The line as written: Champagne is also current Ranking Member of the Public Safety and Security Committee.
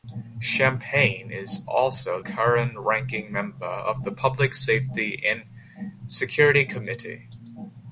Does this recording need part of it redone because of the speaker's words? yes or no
no